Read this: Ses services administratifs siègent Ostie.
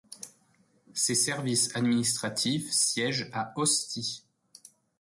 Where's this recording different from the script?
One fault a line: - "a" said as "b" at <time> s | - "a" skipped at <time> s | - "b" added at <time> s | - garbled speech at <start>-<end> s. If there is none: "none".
- "à" added at 3.3 s